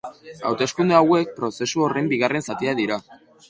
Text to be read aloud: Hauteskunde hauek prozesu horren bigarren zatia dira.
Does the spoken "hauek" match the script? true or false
true